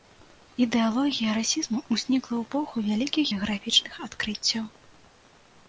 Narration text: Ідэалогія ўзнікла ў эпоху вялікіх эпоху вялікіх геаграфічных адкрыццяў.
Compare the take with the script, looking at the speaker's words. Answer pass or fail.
fail